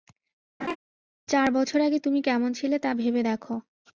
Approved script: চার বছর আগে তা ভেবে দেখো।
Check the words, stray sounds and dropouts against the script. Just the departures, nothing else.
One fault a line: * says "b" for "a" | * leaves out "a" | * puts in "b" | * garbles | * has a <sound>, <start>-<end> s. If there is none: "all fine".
* has a laugh, 0.6-0.8 s
* puts in "তুমি কেমন ছিলে"